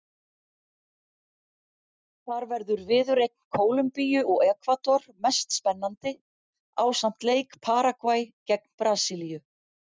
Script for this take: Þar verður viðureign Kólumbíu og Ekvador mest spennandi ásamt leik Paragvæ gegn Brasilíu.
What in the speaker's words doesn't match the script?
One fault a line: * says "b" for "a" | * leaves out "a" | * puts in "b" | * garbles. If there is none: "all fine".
all fine